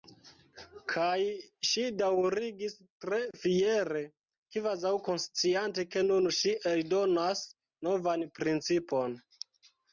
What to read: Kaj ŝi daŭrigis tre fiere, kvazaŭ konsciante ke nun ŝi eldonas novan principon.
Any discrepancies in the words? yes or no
no